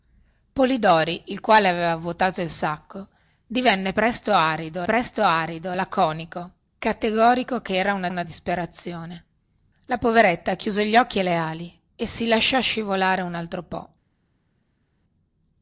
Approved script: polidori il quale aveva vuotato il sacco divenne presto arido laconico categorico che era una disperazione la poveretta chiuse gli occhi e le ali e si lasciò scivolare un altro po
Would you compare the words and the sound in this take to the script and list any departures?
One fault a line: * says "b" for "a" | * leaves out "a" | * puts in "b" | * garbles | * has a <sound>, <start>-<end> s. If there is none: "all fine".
* puts in "presto arido"
* puts in "una"